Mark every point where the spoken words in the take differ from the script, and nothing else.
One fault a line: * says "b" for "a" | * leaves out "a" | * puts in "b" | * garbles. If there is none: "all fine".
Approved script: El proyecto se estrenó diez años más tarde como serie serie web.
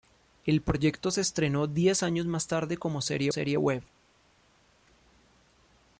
all fine